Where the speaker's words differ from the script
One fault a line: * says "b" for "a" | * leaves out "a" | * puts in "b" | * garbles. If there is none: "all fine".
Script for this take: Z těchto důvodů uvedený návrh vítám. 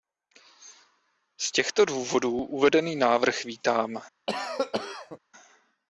all fine